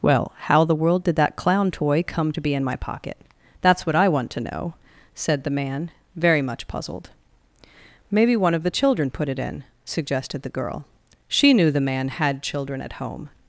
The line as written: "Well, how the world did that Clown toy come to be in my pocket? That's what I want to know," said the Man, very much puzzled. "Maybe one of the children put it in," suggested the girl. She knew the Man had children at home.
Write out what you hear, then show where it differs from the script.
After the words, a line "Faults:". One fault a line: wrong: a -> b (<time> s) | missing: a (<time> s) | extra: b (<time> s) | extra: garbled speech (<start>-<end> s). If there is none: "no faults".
"Well, how the world did that Clown toy come to be in my pocket? That's what I want to know," said the Man, very much puzzled. "Maybe one of the children put it in," suggested the girl. She knew the Man had children at home.
Faults:
no faults